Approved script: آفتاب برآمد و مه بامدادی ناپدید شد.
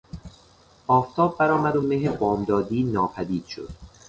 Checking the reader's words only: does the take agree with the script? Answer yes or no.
yes